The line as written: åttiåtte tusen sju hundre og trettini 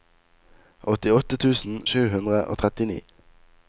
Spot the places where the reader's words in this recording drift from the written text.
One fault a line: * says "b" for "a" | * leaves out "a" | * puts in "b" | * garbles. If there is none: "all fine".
all fine